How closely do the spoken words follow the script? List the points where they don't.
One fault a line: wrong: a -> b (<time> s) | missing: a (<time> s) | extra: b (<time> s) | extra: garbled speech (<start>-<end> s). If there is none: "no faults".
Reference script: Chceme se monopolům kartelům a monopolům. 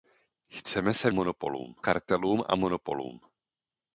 no faults